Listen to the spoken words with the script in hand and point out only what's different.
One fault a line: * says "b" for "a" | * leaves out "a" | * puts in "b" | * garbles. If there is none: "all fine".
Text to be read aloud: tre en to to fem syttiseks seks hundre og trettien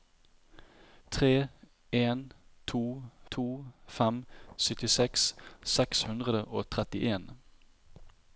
all fine